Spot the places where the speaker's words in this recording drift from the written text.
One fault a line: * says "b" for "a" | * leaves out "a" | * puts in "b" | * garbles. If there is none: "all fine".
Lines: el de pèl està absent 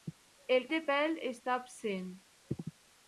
all fine